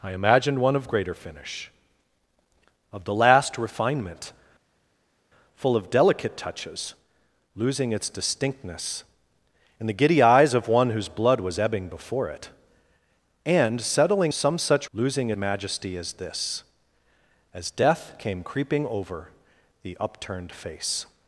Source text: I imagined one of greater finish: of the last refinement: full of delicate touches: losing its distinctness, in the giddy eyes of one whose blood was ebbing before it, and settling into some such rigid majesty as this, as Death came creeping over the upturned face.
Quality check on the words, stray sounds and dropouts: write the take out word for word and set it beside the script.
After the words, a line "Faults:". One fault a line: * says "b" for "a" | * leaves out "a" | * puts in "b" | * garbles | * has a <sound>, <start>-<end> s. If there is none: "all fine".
I imagined one of greater finish: of the last refinement: full of delicate touches: losing its distinctness, in the giddy eyes of one whose blood was ebbing before it, and settling some such losing majesty as this, as Death came creeping over the upturned face.
Faults:
* leaves out "into"
* says "losing" for "rigid"